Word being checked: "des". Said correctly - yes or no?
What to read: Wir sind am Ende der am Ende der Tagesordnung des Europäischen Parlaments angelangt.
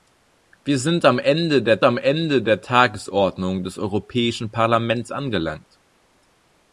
yes